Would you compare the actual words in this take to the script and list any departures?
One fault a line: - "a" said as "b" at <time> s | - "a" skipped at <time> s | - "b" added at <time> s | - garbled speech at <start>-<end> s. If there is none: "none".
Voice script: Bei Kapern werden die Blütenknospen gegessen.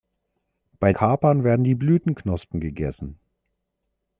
none